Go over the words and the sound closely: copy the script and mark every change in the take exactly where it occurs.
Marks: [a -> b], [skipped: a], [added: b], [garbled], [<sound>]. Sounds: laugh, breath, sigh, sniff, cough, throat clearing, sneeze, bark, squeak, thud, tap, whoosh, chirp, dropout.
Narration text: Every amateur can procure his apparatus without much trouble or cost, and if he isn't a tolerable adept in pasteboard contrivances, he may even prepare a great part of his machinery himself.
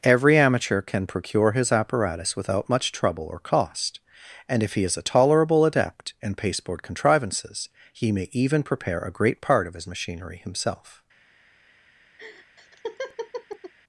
Every amateur can procure his apparatus without much trouble or cost, and if he [isn't -> is] a tolerable adept in pasteboard contrivances, he may even prepare a great part of his machinery himself. [laugh]